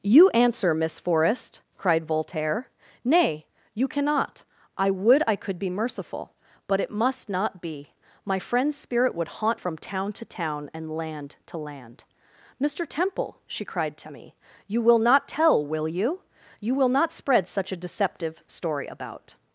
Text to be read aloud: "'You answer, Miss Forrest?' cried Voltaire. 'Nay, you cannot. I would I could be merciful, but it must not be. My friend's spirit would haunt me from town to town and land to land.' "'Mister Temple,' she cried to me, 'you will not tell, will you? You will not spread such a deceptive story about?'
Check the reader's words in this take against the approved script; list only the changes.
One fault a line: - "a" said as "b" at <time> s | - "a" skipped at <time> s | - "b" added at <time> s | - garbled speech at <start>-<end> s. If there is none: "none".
- "me" skipped at 9.6 s